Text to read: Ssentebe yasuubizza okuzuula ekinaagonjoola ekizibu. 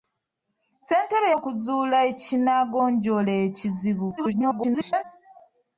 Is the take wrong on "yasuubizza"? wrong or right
wrong